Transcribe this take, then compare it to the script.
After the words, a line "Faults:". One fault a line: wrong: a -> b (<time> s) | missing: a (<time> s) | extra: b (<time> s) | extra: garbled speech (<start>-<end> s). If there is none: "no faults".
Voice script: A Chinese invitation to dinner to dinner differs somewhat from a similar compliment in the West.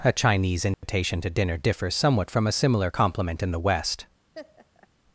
A Chinese invitation to dinner differs somewhat from a similar compliment in the West.
Faults:
missing: to dinner (1.6 s)